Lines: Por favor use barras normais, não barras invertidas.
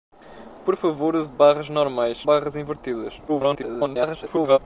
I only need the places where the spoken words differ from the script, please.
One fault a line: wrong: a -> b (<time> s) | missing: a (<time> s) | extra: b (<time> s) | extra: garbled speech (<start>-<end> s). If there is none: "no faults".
missing: não (2.2 s)
extra: garbled speech (3.3-4.6 s)